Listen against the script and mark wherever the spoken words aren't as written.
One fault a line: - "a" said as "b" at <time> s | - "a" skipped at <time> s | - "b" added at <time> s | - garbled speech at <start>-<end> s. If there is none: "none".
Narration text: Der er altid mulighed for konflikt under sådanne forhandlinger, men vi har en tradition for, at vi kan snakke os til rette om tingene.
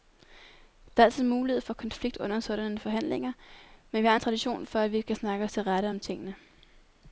none